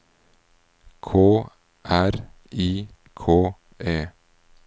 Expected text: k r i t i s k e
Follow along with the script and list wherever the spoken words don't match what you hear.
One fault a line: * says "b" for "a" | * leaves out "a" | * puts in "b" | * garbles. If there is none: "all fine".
* leaves out "t i s"